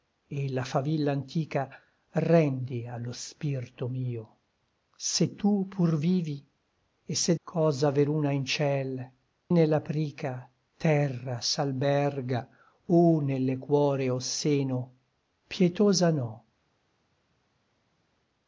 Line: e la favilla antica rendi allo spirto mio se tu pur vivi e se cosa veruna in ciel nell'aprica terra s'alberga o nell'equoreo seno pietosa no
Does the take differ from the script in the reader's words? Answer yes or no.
no